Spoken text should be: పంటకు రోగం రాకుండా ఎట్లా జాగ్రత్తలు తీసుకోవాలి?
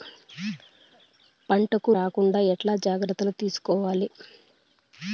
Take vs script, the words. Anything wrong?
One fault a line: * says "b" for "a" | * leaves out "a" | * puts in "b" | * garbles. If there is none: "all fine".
* leaves out "రోగం"